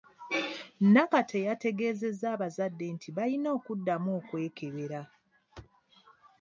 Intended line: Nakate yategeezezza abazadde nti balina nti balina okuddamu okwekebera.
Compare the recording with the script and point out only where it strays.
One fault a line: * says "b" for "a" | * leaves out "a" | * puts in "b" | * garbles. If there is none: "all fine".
* leaves out "nti balina"